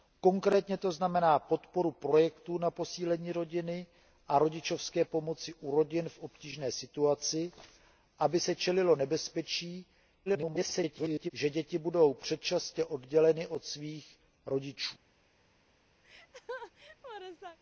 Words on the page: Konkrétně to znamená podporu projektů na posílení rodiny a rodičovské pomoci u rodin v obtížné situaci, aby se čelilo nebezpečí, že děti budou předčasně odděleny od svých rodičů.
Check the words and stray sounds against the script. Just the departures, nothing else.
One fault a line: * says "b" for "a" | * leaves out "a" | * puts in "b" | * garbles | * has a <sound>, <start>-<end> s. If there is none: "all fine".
* garbles
* has a laugh, 16.0-17.6 s